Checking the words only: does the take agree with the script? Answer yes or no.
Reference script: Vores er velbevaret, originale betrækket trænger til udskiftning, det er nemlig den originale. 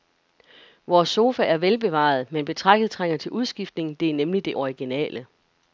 no